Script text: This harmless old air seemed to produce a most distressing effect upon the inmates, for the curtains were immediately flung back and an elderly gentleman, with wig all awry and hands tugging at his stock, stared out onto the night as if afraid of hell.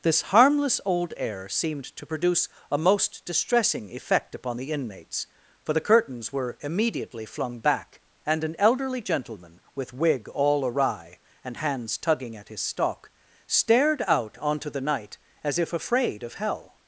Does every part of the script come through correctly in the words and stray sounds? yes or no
yes